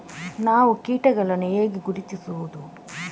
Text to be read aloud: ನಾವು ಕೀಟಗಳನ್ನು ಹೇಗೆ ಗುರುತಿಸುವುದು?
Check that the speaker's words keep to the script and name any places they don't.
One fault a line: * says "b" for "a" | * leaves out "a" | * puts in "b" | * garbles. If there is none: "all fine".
all fine